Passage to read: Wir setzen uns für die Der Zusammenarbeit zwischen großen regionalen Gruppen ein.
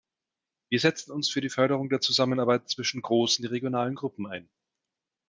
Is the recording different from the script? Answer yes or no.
yes